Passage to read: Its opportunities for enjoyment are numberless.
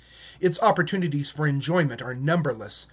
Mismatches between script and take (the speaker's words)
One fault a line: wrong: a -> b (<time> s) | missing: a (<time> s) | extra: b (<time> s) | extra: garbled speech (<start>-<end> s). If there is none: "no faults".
no faults